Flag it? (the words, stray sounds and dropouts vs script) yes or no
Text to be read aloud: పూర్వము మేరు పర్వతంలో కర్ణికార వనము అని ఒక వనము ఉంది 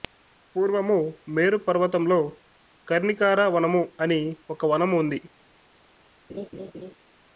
yes